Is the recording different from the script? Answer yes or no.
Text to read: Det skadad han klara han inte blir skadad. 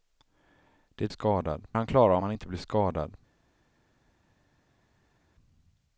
no